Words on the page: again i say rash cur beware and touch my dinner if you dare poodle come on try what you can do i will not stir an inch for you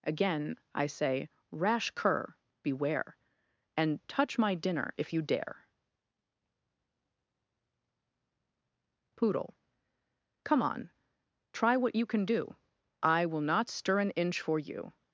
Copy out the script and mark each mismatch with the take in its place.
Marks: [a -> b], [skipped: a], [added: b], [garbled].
again i say rash cur beware and touch my dinner if you dare poodle come on try what you can do i will not stir an inch for you